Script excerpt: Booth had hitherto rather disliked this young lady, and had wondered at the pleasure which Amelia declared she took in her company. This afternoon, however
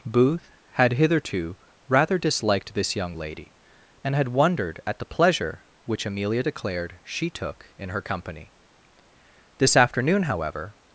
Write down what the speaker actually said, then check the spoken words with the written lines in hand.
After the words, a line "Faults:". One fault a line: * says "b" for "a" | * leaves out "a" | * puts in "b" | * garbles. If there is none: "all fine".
Booth had hitherto rather disliked this young lady, and had wondered at the pleasure which Amelia declared she took in her company. This afternoon, however
Faults:
all fine